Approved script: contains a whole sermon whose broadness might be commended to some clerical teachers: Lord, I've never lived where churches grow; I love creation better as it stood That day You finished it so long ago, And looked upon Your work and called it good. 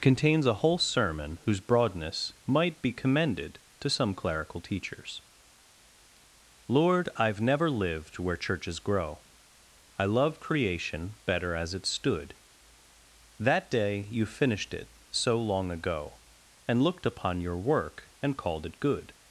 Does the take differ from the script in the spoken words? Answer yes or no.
no